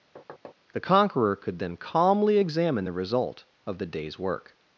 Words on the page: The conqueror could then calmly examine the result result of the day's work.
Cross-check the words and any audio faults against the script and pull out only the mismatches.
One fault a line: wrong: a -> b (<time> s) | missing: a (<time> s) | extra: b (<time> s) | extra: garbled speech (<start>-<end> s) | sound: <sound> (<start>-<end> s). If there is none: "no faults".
sound: thud (0.2-0.6 s)
missing: result (3.4 s)